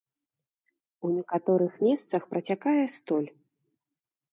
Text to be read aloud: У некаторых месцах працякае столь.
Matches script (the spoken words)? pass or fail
pass